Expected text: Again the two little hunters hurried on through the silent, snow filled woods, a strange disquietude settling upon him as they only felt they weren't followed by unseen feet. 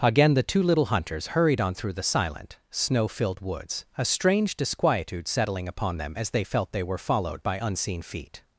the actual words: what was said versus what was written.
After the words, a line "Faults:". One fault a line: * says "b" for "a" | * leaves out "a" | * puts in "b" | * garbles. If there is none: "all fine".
Again the two little hunters hurried on through the silent, snow filled woods, a strange disquietude settling upon them as they felt they were followed by unseen feet.
Faults:
* says "them" for "him"
* leaves out "only"
* says "were" for "weren't"